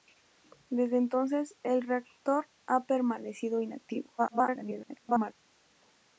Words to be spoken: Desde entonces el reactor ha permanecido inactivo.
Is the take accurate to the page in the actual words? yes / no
no